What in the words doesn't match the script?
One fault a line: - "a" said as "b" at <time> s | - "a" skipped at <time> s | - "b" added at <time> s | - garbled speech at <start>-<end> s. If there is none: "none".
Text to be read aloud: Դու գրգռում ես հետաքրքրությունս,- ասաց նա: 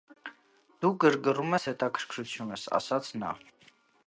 none